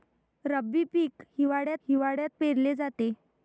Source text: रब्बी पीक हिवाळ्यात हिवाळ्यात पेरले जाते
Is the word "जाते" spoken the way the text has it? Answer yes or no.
yes